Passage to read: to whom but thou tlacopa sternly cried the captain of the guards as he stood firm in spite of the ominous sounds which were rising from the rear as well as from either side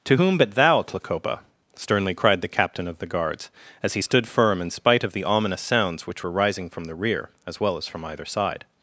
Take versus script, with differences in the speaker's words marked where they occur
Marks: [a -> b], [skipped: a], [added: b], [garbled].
to whom but thou tlacopa sternly cried the captain of the guards as he stood firm in spite of the ominous sounds which were rising from the rear as well as from either side